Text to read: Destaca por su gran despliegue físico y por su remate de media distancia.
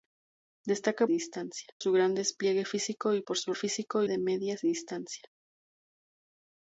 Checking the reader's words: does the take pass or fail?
fail